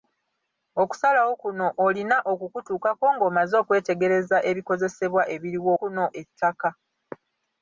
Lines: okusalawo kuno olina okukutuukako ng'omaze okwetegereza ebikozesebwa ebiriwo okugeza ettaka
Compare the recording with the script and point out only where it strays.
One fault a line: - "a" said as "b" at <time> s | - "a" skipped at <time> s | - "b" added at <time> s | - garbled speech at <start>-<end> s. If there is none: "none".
- "okugeza" said as "kuno" at 5.8 s